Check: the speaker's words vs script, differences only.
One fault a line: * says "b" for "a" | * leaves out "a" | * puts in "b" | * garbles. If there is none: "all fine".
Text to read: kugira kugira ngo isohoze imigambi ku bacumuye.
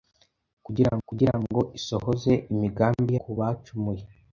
all fine